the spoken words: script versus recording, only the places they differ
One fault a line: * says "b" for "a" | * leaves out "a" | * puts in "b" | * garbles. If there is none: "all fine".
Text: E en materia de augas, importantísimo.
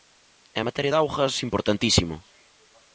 all fine